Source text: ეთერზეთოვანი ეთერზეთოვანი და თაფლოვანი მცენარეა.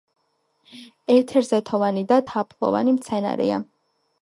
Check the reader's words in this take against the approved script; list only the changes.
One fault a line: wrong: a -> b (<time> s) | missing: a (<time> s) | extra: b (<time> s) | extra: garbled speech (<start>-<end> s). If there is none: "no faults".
missing: ეთერზეთოვანი (2.0 s)